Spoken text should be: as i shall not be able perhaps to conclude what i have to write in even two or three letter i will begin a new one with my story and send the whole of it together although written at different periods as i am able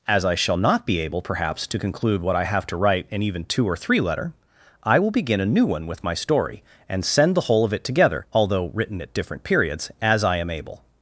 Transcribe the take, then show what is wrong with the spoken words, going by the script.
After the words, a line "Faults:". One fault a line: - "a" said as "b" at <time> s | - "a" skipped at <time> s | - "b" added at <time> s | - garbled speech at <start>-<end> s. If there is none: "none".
as i shall not be able perhaps to conclude what i have to write in even two or three letter i will begin a new one with my story and send the whole of it together although written at different periods as i am able
Faults:
none